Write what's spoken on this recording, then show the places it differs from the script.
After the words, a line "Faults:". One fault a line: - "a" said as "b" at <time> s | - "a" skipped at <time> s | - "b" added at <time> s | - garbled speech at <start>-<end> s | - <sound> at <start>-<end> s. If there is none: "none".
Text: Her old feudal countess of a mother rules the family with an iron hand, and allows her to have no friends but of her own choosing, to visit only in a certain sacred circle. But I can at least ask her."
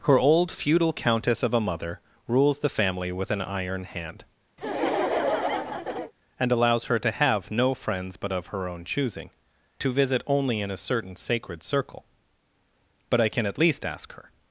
Her old feudal countess of a mother rules the family with an iron hand, and allows her to have no friends but of her own choosing, to visit only in a certain sacred circle. But I can at least ask her."
Faults:
- laugh at 4.6-6.1 s